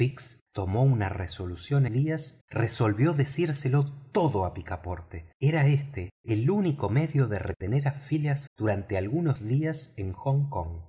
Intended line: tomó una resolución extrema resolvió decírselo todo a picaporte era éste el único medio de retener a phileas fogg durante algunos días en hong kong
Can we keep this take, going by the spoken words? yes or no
no